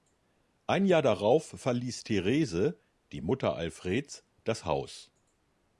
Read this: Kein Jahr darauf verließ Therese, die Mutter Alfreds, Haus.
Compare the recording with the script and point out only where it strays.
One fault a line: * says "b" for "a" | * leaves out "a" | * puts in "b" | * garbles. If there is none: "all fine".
* says "Ein" for "Kein"
* puts in "das"